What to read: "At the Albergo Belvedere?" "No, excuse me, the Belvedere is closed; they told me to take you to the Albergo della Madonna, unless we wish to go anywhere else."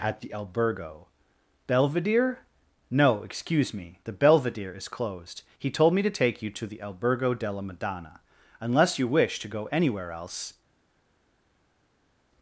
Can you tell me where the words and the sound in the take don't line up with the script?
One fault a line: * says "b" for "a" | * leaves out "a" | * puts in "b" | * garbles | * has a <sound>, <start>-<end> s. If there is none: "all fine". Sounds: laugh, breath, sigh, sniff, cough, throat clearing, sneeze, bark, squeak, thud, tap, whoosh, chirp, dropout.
* says "he" for "they"
* says "you" for "we"